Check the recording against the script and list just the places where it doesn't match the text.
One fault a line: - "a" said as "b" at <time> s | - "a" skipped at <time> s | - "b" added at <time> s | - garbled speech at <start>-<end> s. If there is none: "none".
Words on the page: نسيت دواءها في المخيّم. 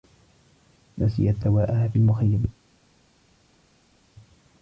none